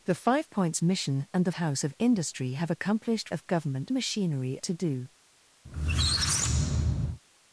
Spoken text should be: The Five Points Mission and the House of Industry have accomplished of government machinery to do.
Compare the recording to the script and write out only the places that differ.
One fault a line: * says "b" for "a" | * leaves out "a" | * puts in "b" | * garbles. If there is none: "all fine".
all fine